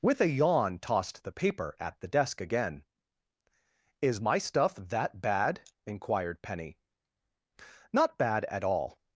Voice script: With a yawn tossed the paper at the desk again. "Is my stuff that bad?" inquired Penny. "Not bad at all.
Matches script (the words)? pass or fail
pass